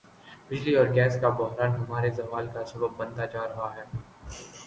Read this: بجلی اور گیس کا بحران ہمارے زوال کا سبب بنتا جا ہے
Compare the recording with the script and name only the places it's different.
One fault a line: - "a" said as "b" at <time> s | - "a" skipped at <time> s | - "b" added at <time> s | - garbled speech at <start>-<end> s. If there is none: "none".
- "رہا" added at 3.4 s